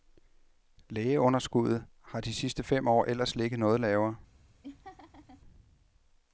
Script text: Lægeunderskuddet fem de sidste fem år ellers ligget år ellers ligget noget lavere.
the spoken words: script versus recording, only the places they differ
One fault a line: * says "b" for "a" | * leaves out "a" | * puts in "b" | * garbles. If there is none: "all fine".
* says "har" for "fem"
* leaves out "år ellers ligget"